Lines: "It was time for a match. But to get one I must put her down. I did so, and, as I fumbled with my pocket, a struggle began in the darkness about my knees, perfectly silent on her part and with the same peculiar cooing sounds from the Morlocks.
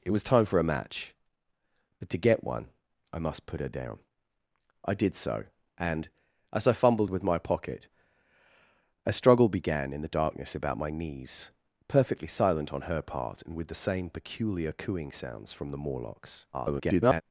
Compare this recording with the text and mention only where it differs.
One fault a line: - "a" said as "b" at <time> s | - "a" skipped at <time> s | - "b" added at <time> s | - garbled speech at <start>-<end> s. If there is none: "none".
- garbled speech at 16.5-17.2 s